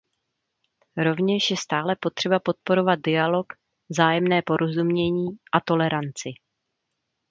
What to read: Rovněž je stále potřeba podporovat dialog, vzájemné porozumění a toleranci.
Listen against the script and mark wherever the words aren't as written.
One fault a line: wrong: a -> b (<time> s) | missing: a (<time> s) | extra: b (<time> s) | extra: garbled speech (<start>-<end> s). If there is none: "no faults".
no faults